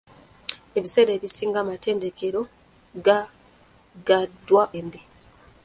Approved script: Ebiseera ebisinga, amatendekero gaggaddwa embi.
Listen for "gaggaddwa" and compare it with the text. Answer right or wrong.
right